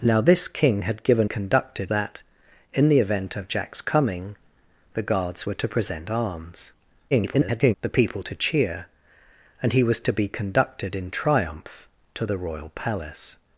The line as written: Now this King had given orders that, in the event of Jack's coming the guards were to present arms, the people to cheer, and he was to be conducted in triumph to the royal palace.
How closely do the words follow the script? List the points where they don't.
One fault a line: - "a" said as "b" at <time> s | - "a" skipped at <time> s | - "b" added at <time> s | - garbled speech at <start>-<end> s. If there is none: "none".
- "orders" said as "conducted" at 1.2 s
- garbled speech at 7.1-7.7 s